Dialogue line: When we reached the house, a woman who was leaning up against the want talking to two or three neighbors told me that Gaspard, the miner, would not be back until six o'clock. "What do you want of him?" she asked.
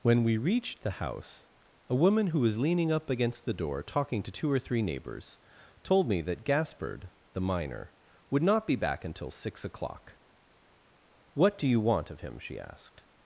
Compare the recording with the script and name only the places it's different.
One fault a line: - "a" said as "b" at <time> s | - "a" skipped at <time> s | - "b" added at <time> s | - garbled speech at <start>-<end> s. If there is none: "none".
- "want" said as "door" at 3.5 s